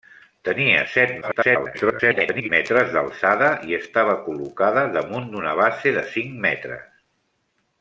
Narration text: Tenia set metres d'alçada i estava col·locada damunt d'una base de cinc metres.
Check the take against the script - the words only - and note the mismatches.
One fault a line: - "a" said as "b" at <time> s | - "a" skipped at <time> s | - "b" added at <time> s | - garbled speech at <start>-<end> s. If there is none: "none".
- garbled speech at 1.2-2.5 s